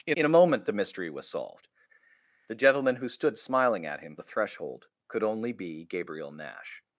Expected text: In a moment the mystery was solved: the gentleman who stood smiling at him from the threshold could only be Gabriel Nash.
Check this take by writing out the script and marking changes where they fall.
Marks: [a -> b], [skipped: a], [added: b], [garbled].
In [added: in] a moment the mystery was solved: the gentleman who stood smiling at him [skipped: from] the threshold could only be Gabriel Nash.